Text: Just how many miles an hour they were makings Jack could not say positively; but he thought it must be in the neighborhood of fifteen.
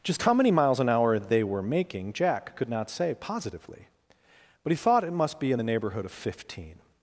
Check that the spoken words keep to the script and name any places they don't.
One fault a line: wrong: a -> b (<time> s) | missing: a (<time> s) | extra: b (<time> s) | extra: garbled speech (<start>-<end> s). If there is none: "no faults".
wrong: makings -> making (1.6 s)